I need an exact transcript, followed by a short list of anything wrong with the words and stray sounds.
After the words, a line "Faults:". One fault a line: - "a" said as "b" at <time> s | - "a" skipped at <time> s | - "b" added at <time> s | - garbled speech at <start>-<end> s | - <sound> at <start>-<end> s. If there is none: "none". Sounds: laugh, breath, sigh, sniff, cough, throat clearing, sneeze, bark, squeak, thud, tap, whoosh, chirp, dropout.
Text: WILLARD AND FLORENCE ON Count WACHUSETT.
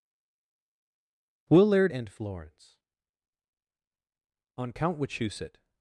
WILLARD AND FLORENCE ON Count WACHUSETT.
Faults:
none